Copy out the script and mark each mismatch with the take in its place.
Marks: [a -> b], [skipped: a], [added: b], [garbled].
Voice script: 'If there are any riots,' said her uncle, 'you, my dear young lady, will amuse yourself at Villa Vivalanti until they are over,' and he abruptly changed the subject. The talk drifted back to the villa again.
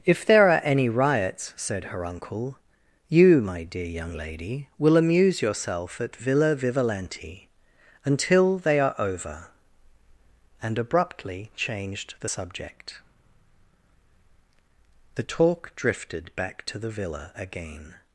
'If there are any riots,' said her uncle, 'you, my dear young lady, will amuse yourself at Villa Vivalanti until they are over,' and [skipped: he] abruptly changed the subject. The talk drifted back to the villa again.